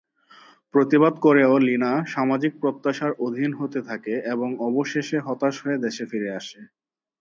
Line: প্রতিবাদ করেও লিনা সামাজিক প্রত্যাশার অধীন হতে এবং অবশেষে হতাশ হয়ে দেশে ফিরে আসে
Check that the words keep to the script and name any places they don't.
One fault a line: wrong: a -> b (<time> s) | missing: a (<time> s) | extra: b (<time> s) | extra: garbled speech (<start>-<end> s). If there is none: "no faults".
extra: থাকে (3.9 s)